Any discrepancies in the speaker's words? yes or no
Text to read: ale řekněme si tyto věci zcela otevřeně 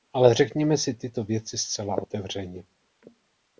no